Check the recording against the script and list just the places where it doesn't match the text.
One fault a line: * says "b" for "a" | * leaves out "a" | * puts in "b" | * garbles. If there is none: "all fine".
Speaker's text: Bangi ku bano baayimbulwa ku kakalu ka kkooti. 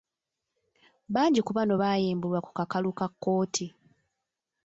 all fine